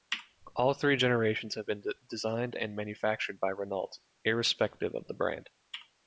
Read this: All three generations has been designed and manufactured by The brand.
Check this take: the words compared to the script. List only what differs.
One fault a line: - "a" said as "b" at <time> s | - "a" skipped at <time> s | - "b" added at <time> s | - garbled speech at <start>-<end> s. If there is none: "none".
- "has" said as "have" at 1.5 s
- "Renault irrespective of" added at 3.5 s